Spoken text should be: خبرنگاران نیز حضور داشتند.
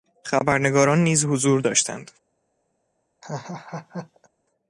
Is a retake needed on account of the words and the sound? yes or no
yes